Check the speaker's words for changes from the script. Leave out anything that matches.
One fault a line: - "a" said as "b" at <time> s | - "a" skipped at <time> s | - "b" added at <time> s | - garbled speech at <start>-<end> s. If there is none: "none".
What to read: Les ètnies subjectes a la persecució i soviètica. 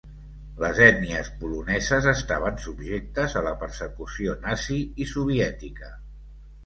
- "poloneses estaven" added at 1.4 s
- "nazi" added at 4.5 s